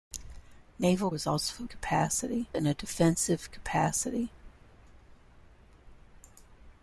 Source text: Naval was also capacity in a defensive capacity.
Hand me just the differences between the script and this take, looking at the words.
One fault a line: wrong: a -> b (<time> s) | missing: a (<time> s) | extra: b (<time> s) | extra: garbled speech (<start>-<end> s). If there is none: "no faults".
no faults